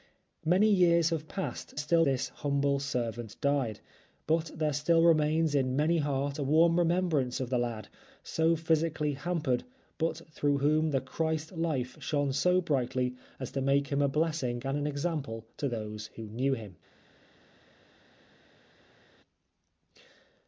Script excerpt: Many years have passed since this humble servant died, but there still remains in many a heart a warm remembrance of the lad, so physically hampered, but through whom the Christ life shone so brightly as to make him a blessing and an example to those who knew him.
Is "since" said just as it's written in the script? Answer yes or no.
no